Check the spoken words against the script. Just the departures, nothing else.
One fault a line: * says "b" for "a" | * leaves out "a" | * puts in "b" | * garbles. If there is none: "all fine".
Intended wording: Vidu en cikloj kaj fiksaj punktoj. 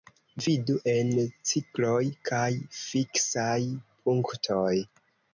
all fine